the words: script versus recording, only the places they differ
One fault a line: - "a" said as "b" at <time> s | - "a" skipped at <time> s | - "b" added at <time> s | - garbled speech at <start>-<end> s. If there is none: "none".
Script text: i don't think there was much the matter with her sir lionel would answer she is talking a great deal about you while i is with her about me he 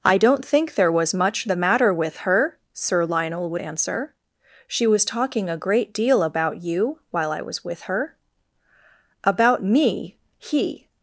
- "is" said as "was" at 4.9 s
- "is" said as "was" at 7.4 s